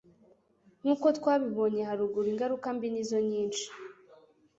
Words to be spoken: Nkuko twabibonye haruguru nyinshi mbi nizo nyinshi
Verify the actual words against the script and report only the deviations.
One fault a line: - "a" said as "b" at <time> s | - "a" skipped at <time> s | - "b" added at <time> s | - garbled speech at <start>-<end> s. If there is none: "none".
- "nyinshi" said as "ingaruka" at 2.3 s